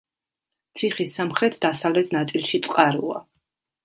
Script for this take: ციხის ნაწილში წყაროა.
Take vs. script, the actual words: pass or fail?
fail